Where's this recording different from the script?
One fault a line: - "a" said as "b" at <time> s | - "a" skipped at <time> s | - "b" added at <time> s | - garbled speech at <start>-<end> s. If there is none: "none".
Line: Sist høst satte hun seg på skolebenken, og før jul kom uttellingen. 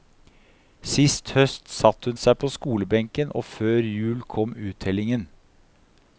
none